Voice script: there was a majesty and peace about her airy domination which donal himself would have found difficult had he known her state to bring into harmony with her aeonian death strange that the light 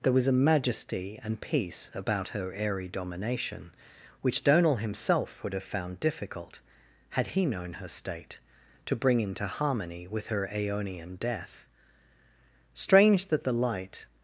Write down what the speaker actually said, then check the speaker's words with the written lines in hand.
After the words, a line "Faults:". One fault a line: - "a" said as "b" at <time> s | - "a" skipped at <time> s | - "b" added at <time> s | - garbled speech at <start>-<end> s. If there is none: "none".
there was a majesty and peace about her airy domination which donal himself would have found difficult had he known her state to bring into harmony with her aeonian death strange that the light
Faults:
none